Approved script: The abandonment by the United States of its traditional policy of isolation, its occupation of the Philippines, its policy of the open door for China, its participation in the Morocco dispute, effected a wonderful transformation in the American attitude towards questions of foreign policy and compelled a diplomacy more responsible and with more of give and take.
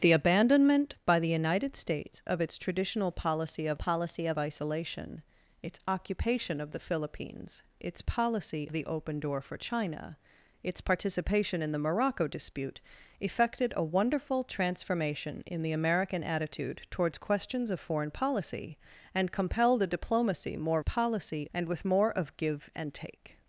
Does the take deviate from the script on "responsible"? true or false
true